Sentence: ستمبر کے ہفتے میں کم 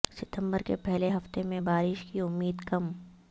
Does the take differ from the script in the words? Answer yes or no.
yes